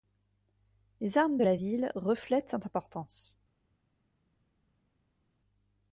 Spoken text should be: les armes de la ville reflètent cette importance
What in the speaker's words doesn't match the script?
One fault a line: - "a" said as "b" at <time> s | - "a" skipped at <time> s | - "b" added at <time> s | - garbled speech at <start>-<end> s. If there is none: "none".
none